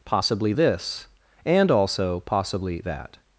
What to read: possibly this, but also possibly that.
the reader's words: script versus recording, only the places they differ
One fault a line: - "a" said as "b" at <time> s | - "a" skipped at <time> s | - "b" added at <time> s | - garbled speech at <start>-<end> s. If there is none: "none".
- "but" said as "and" at 1.4 s